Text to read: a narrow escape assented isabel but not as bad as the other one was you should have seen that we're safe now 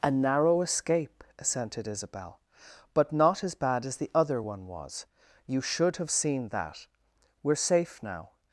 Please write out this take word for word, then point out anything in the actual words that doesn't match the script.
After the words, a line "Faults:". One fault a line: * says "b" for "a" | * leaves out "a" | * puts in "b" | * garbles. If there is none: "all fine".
a narrow escape assented isabel but not as bad as the other one was you should have seen that we're safe now
Faults:
all fine